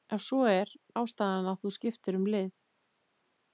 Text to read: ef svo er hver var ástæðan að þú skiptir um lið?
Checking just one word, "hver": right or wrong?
wrong